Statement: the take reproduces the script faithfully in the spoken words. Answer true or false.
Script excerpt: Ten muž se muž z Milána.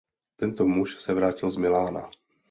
false